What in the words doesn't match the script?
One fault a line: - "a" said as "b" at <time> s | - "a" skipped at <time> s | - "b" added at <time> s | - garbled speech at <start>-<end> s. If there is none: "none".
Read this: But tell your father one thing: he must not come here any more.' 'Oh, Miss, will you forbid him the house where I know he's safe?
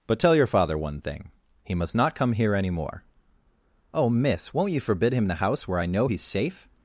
- "will" said as "won't" at 4.5 s